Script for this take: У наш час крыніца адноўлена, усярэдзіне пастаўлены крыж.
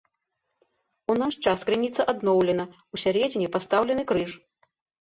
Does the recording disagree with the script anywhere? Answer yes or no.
no